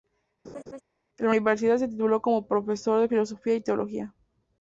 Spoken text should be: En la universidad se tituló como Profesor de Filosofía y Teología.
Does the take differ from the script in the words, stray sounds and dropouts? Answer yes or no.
yes